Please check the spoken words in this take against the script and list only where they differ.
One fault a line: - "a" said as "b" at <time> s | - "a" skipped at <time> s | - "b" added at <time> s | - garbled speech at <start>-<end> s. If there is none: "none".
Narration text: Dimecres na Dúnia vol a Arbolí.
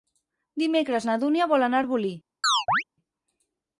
- "anar" added at 1.7 s